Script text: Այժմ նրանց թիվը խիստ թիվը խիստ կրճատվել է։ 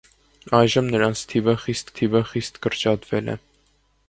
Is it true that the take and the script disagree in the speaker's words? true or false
false